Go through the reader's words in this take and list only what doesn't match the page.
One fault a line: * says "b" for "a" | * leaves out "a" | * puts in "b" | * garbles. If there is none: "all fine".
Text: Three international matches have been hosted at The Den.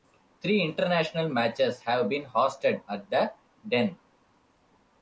all fine